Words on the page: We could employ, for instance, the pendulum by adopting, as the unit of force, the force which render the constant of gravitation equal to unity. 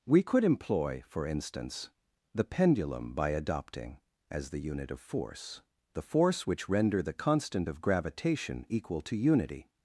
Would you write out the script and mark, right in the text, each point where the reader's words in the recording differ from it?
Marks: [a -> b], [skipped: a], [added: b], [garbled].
We could employ, for instance, the pendulum by adopting, as the unit of force, the force which render the constant of gravitation equal to unity.